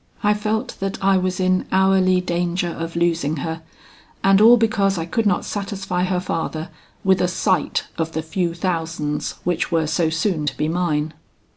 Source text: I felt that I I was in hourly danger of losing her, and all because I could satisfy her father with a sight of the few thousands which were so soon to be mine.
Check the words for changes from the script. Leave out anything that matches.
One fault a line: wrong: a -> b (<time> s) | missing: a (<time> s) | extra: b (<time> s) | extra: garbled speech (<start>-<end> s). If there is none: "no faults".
missing: I (1.2 s)
extra: not (5.3 s)